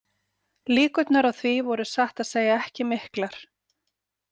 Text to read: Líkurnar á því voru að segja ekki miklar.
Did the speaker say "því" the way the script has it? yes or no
yes